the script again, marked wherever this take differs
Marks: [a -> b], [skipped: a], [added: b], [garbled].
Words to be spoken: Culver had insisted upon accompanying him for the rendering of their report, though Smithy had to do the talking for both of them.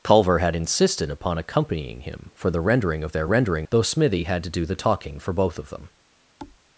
Culver had insisted upon accompanying him for the rendering of their [report, -> rendering] though Smithy had to do the talking for both of them.